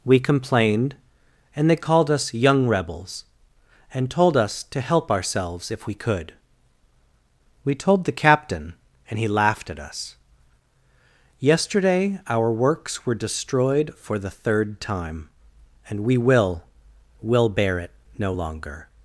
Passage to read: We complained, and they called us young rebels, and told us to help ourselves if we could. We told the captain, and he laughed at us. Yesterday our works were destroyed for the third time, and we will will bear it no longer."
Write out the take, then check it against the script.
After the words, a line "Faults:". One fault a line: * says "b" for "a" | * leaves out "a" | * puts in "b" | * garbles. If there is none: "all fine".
We complained, and they called us young rebels, and told us to help ourselves if we could. We told the captain, and he laughed at us. Yesterday our works were destroyed for the third time, and we will will bear it no longer."
Faults:
all fine